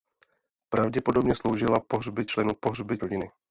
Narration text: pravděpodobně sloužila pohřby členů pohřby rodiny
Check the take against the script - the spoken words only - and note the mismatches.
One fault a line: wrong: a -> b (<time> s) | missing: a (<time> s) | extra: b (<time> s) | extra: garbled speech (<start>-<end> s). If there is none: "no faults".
no faults